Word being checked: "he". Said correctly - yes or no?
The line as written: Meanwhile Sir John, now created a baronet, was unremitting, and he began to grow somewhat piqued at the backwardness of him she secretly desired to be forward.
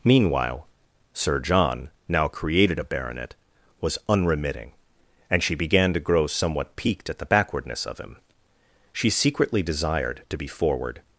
no